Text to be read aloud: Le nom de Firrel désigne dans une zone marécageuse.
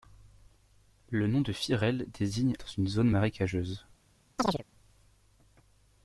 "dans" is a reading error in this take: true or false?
false